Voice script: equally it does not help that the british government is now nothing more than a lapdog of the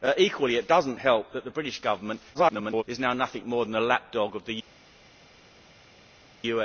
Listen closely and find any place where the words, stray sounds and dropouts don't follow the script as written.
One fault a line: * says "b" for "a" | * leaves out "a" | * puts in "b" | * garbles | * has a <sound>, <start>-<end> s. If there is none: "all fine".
* garbles